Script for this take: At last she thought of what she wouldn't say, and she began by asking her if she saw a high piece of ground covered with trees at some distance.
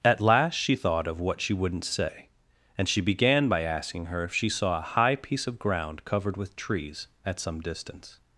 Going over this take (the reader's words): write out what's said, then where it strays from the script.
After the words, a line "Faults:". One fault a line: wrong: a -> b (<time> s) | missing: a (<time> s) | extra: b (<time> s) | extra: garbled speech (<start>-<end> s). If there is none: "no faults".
At last she thought of what she wouldn't say, and she began by asking her if she saw a high piece of ground covered with trees at some distance.
Faults:
no faults